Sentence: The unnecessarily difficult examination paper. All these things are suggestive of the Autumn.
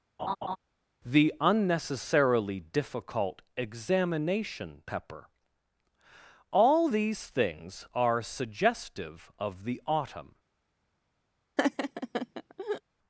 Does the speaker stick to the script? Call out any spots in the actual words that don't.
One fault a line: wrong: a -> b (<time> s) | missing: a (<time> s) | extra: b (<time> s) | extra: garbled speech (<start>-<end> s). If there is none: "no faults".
wrong: paper -> pepper (4.8 s)